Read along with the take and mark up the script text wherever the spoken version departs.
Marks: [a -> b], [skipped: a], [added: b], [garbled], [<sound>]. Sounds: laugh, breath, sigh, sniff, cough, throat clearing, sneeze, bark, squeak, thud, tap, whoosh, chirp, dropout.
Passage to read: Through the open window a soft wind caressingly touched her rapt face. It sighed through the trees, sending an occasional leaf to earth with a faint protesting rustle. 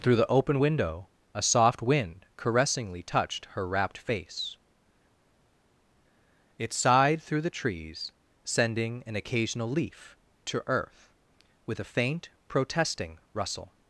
Through the open window a soft wind caressingly touched her rapt face. It sighed through the trees, sending an occasional leaf to earth with a faint protesting rustle.